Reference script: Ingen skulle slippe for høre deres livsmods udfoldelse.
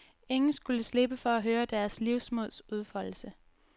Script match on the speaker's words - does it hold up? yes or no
no